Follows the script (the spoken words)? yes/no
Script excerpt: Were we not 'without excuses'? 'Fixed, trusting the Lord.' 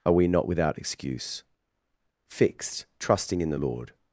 no